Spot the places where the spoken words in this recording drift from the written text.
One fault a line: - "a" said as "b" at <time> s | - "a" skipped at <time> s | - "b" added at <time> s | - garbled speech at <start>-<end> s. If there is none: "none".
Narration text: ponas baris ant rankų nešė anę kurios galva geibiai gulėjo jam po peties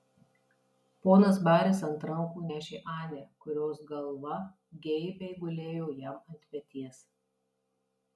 - "po" said as "ant" at 6.3 s